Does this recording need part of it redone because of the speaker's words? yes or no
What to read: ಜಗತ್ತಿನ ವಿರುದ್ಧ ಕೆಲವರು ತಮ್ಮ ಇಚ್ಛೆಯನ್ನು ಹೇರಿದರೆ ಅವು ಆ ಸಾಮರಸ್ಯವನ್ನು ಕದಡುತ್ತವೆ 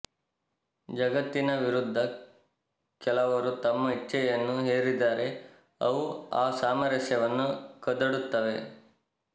no